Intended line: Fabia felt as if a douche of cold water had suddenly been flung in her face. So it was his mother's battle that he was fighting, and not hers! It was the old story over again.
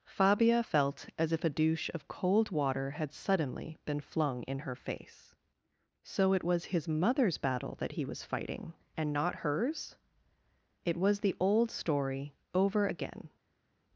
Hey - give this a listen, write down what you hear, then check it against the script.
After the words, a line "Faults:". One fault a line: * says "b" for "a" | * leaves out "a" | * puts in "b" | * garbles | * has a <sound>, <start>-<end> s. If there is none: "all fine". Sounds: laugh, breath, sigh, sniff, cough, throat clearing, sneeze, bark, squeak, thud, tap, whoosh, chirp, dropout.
Fabia felt as if a douche of cold water had suddenly been flung in her face. So it was his mother's battle that he was fighting, and not hers! It was the old story over again.
Faults:
all fine